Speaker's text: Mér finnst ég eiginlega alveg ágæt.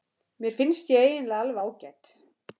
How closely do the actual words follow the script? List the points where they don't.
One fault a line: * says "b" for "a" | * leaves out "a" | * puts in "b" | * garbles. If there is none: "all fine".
all fine